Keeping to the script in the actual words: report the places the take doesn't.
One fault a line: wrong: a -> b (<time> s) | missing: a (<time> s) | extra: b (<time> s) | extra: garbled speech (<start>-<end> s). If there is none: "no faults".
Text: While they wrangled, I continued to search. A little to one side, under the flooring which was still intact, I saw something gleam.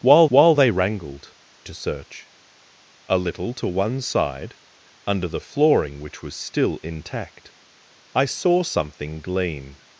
extra: while (0.3 s)
missing: I continued (1.4 s)